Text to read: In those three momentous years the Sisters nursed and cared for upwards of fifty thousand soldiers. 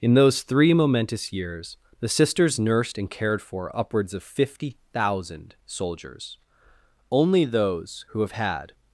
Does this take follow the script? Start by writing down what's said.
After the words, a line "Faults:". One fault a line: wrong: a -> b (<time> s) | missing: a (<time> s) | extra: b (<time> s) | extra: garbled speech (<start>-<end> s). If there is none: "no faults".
In those three momentous years the Sisters nursed and cared for upwards of fifty thousand soldiers. Only those who have had
Faults:
extra: Only those who have had (7.1 s)